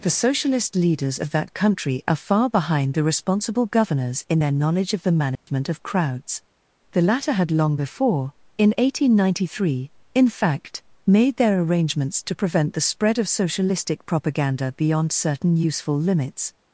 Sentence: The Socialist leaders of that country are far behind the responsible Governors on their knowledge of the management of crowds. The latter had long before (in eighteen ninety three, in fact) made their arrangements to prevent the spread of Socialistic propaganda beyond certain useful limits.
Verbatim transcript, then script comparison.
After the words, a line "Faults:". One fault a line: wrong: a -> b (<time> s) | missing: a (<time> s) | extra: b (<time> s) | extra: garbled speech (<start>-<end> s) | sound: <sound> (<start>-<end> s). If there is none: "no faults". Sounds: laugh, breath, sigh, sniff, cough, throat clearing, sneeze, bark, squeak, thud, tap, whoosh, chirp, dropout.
The Socialist leaders of that country are far behind the responsible Governors in their knowledge of the management of crowds. The latter had long before (in eighteen ninety three, in fact) made their arrangements to prevent the spread of Socialistic propaganda beyond certain useful limits.
Faults:
wrong: on -> in (4.3 s)
sound: dropout (5.4-5.5 s)